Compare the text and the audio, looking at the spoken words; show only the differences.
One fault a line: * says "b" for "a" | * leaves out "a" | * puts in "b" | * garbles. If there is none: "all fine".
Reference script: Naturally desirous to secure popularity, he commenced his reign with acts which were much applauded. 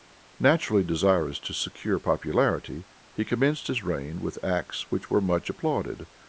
all fine